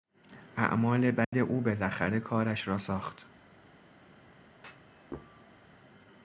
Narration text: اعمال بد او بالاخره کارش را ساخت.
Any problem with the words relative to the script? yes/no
no